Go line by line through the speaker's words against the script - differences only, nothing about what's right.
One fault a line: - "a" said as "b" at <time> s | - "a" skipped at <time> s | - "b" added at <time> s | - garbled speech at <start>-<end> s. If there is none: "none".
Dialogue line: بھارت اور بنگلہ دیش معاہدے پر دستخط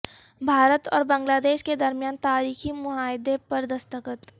- "کے درمیان تاریخی" added at 1.6 s